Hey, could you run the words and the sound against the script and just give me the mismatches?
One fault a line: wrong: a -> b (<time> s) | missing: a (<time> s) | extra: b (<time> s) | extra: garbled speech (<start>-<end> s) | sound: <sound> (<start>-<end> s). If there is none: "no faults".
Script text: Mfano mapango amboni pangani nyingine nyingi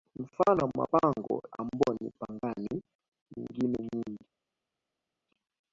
no faults